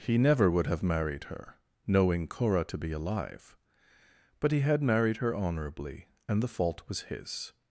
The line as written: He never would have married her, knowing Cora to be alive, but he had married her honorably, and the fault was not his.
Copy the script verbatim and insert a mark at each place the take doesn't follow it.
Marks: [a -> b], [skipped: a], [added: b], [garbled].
He never would have married her, knowing Cora to be alive, but he had married her honorably, and the fault was [skipped: not] his.